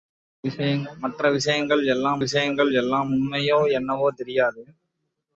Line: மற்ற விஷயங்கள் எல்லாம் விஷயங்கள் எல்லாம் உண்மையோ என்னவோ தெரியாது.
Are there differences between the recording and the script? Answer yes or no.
no